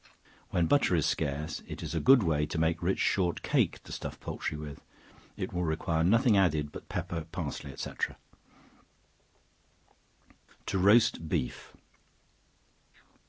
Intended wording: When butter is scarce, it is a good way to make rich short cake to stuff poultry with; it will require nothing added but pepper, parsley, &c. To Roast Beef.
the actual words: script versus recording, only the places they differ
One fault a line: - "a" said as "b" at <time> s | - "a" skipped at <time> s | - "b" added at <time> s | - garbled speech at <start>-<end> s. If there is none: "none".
none